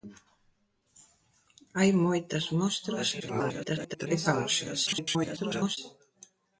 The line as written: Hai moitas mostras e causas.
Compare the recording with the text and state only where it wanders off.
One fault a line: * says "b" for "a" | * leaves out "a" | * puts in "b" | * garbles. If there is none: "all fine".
* garbles
* garbles